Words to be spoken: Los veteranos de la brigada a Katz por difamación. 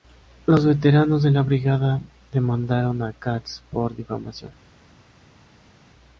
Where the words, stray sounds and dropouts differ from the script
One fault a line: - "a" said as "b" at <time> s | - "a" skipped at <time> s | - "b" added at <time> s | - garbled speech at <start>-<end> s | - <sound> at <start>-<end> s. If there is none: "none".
- "demandaron" added at 2.3 s